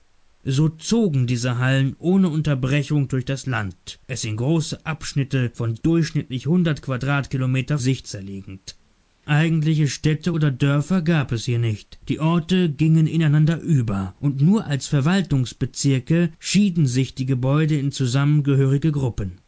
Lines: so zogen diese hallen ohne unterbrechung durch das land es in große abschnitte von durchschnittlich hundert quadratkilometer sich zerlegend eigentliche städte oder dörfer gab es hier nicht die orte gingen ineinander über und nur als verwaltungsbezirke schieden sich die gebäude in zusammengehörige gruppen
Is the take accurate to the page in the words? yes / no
yes